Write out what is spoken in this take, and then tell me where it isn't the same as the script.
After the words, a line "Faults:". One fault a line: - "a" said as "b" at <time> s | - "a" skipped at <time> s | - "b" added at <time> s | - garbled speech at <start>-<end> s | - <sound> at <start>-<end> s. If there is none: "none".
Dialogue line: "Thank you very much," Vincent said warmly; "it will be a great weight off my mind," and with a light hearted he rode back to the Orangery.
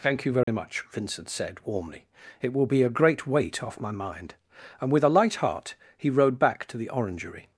"Thank you very much," Vincent said warmly; "it will be a great weight off my mind," and with a light heart he rode back to the Orangery.
Faults:
- dropout at 0.4-0.5 s
- "hearted" said as "heart" at 5.4 s